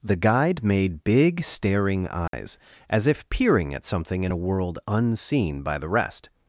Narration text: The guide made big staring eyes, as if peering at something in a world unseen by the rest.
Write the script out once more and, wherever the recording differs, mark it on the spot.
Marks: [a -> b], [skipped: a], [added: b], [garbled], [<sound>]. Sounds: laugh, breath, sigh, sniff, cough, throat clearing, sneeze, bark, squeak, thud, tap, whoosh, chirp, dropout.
The guide made big staring eyes, [dropout] as if peering at something in a world unseen by the rest.